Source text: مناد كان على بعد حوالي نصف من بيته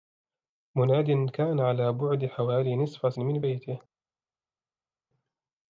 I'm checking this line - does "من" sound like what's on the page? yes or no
yes